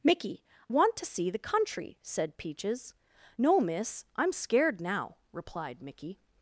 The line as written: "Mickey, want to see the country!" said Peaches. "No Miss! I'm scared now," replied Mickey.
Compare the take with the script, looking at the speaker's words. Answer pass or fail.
pass